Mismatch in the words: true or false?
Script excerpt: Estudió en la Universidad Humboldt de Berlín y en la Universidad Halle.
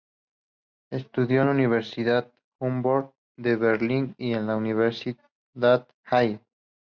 false